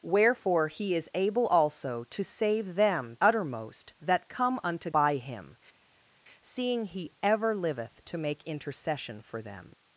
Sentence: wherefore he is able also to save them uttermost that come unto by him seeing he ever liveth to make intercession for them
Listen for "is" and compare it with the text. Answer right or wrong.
right